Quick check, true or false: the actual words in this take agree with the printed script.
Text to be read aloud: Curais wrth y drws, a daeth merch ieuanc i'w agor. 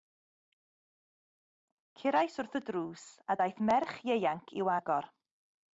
true